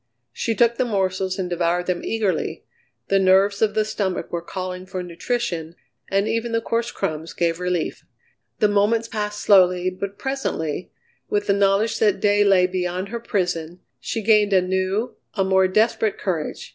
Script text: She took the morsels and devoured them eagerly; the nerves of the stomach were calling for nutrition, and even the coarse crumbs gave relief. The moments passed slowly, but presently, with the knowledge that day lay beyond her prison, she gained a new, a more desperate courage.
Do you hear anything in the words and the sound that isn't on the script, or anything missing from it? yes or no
no